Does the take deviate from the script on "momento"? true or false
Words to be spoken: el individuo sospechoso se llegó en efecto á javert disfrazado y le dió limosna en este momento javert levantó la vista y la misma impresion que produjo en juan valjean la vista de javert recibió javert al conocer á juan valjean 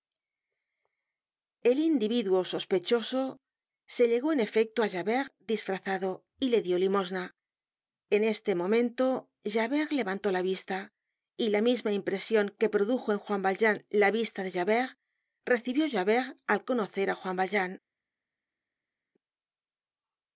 false